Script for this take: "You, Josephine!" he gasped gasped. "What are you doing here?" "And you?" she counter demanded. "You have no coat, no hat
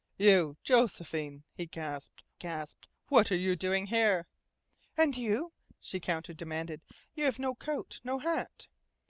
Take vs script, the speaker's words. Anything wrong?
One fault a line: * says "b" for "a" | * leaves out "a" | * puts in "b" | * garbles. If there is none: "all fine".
all fine